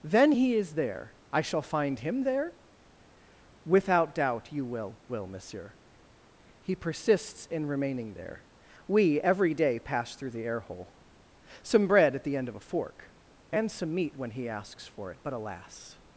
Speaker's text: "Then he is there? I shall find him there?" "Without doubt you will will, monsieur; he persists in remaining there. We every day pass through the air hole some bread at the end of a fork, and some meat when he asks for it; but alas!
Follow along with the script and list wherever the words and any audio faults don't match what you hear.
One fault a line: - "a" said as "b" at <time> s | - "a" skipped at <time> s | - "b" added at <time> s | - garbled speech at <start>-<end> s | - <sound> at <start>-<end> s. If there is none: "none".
none